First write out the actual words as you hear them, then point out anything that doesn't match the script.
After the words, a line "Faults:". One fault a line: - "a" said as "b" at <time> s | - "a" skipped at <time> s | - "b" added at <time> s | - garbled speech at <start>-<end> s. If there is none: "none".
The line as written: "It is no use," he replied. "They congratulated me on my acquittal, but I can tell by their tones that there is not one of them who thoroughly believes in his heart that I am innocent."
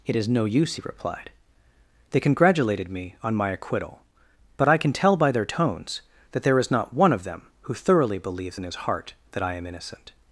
"It is no use," he replied. "They congratulated me on my acquittal, but I can tell by their tones that there is not one of them who thoroughly believes in his heart that I am innocent."
Faults:
none